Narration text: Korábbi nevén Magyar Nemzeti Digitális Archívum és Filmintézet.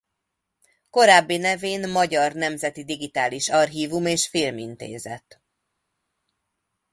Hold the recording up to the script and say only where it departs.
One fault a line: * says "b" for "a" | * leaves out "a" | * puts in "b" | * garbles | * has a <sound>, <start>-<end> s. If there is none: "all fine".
all fine